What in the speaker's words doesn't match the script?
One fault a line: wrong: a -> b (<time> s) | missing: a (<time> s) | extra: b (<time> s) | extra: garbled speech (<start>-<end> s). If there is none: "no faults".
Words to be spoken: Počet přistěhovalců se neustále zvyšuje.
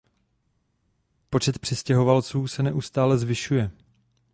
no faults